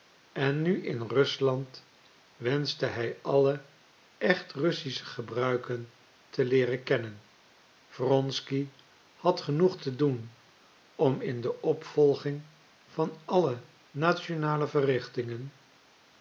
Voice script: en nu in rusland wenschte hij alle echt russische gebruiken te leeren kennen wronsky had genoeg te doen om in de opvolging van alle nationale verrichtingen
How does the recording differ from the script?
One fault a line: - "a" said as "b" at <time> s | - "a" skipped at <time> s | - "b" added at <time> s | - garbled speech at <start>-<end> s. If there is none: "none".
none